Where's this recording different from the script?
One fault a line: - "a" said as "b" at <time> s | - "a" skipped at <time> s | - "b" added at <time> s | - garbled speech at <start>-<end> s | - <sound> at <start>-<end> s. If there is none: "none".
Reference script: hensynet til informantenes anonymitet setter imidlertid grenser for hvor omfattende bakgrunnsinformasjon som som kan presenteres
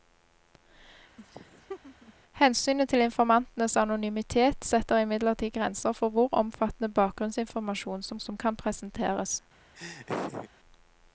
- laugh at 1.2-2.1 s
- laugh at 9.7-10.5 s